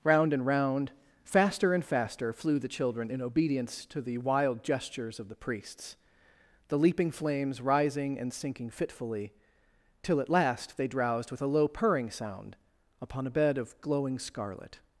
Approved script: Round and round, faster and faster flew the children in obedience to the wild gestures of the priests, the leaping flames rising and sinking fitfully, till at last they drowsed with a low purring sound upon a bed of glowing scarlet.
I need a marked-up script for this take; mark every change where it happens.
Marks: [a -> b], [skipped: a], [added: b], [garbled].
Round and round, faster and faster flew the children in obedience to the wild gestures of the priests, the leaping flames rising and sinking fitfully, till at last they drowsed with a low purring sound upon a bed of glowing scarlet.